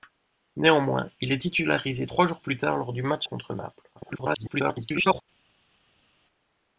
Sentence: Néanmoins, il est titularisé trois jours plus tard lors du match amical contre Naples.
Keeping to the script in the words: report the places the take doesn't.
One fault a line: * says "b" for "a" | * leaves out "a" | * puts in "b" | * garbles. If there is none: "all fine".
* leaves out "amical"
* garbles